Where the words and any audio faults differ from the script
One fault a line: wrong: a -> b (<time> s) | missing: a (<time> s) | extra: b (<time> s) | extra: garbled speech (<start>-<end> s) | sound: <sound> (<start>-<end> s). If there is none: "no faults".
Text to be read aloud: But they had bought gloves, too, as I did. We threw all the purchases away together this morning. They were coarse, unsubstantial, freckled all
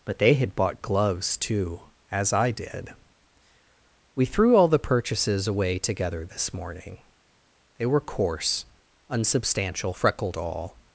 no faults